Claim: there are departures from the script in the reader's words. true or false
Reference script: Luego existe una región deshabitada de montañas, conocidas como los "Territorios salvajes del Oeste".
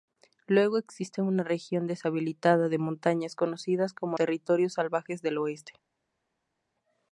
true